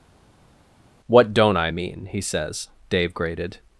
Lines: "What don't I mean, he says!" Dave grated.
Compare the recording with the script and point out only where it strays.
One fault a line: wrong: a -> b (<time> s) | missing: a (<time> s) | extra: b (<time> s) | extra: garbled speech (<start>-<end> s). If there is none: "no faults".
no faults